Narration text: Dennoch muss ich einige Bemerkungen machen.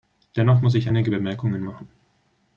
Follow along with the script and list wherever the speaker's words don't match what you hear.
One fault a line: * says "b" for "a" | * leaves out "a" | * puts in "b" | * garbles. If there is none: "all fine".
all fine